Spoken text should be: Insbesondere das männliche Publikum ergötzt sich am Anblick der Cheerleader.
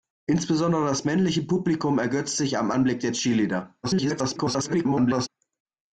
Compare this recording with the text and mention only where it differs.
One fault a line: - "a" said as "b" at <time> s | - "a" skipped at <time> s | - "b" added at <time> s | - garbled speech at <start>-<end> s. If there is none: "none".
- garbled speech at 3.8-5.3 s